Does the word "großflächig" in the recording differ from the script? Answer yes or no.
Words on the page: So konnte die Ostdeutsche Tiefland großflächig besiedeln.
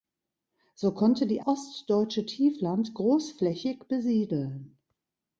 no